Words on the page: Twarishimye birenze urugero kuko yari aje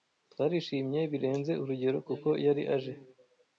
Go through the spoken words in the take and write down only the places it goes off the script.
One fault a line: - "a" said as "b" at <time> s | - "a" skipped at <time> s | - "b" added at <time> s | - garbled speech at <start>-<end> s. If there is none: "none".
none